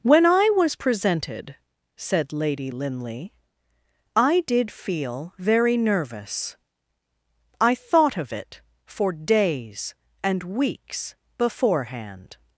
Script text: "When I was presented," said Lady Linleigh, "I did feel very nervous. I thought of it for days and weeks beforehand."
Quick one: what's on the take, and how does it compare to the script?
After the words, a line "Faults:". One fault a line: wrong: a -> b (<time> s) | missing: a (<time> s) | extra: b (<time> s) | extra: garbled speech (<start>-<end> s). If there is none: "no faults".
"When I was presented," said Lady Linleigh, "I did feel very nervous. I thought of it for days and weeks beforehand."
Faults:
no faults